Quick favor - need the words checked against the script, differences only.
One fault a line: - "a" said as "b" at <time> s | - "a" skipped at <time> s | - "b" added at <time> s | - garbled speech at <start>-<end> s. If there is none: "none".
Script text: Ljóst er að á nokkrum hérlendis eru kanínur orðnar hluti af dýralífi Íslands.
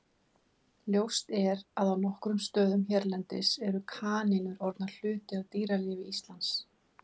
- "stöðum" added at 2.5 s